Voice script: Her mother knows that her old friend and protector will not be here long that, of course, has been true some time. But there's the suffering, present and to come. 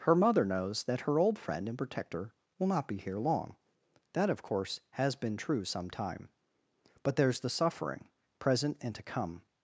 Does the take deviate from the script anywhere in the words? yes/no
no